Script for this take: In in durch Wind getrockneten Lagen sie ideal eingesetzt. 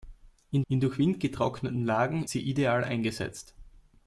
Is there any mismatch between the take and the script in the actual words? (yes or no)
no